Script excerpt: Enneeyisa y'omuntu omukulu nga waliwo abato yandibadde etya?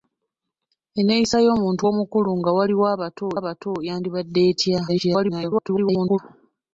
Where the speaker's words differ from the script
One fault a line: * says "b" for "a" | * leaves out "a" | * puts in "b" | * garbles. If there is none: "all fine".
* puts in "abato"
* garbles